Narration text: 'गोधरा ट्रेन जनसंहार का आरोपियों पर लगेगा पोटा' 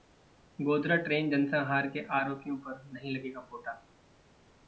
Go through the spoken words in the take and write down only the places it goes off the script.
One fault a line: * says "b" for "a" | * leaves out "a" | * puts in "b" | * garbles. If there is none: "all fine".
* says "के" for "का"
* puts in "नहीं"